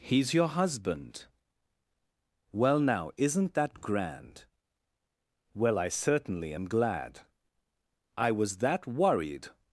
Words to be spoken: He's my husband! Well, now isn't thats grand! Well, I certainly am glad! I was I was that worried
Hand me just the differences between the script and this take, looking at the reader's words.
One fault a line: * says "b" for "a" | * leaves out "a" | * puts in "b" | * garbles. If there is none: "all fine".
* says "your" for "my"
* says "that" for "thats"
* leaves out "I was"